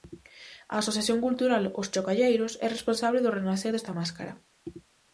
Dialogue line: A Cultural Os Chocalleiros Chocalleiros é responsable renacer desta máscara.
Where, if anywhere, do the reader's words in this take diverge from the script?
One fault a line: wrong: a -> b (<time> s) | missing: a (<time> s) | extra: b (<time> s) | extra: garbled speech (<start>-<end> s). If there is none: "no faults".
extra: Asociación (0.8 s)
missing: Chocalleiros (2.5 s)
extra: do (3.2 s)